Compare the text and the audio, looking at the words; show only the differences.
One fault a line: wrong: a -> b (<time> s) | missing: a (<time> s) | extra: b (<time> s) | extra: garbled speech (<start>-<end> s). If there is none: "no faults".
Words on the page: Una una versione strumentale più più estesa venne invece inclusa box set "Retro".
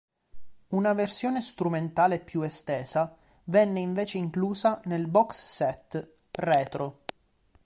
missing: una (0.9 s)
missing: più (2.4 s)
extra: nel (4.8 s)